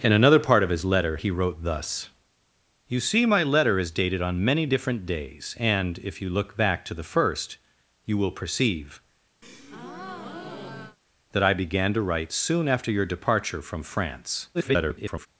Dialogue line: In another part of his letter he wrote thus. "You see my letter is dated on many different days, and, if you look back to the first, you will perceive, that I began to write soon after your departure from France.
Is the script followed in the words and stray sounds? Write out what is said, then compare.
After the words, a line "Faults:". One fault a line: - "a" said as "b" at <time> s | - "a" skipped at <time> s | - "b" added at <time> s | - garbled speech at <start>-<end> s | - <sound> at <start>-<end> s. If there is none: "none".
In another part of his letter he wrote thus. "You see my letter is dated on many different days, and, if you look back to the first, you will perceive, that I began to write soon after your departure from France. [garbled]
Faults:
- breath at 9.4-11.0 s
- garbled speech at 14.5-15.3 s